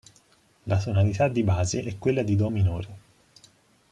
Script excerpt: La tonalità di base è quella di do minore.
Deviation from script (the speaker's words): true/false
false